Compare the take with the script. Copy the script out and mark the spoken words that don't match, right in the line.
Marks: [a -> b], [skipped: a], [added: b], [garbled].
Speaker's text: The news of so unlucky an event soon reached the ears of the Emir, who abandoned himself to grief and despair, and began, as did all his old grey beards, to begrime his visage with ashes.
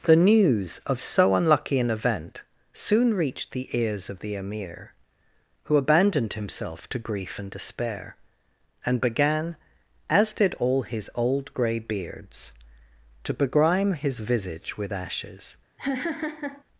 The news of so unlucky an event soon reached the ears of the Emir, who abandoned himself to grief and despair, and began, as did all his old grey beards, to begrime his visage with ashes.